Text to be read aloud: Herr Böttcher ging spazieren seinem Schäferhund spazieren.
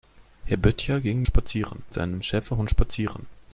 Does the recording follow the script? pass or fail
pass